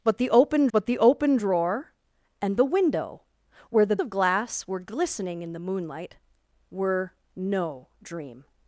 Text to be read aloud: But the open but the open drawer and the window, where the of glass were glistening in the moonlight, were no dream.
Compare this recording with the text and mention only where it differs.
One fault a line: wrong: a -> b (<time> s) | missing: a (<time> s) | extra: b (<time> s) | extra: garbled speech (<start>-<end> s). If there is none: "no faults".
no faults